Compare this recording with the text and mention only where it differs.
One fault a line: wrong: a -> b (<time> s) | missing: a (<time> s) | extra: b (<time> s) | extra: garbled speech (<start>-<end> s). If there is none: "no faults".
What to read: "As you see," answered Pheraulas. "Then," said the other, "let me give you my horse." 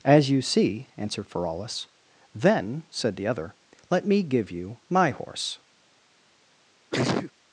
no faults